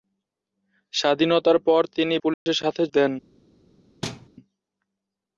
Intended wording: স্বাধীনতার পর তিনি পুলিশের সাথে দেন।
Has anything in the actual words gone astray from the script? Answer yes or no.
no